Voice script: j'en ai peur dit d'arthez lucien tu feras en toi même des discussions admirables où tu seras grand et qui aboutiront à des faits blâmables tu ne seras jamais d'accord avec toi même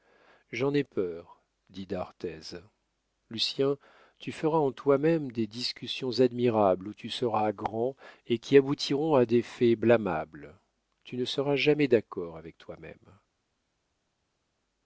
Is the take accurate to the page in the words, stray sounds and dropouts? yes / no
yes